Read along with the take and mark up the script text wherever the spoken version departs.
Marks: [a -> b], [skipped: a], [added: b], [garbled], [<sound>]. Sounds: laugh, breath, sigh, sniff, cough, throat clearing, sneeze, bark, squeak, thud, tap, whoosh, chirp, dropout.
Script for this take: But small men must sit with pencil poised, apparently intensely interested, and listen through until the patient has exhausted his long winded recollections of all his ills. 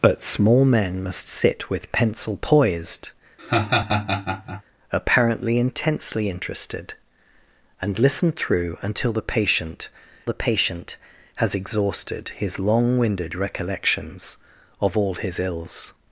But small men must sit with pencil poised, [laugh] apparently intensely interested, and listen through until the patient [added: the patient] has exhausted his long winded recollections of all his ills.